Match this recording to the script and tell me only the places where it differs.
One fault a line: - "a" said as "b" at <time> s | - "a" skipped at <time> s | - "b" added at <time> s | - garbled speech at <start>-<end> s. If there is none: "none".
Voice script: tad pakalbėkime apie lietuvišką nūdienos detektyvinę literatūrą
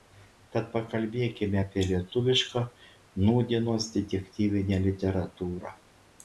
none